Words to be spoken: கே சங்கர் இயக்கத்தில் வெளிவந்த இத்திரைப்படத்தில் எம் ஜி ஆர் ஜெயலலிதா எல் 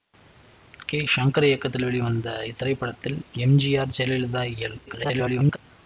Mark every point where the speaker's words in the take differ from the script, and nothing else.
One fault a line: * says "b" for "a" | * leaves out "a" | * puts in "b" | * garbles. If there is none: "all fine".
* garbles